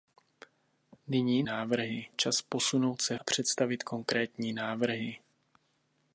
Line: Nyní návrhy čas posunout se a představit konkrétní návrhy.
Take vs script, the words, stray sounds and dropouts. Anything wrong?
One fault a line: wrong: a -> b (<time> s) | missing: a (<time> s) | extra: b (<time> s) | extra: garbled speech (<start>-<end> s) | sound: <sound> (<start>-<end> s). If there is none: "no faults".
no faults